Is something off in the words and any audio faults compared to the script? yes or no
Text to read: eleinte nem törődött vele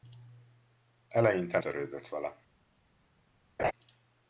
yes